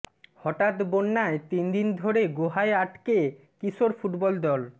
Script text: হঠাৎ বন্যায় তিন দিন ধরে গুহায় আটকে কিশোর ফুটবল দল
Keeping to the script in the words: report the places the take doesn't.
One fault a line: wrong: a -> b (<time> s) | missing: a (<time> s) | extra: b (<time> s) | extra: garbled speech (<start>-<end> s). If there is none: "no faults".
no faults